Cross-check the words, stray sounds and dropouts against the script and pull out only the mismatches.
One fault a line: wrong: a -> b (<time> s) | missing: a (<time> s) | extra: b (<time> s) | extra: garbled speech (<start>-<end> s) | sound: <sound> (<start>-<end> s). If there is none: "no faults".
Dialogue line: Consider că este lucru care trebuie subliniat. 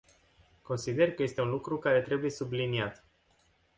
extra: un (1.4 s)